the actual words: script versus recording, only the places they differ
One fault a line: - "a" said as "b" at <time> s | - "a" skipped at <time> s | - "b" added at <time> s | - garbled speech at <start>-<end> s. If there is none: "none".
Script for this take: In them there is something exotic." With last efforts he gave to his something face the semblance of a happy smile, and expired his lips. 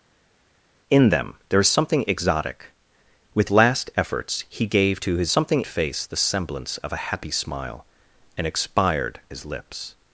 none